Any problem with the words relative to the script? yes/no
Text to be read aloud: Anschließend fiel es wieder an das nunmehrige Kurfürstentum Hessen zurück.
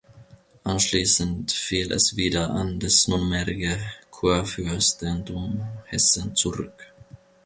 no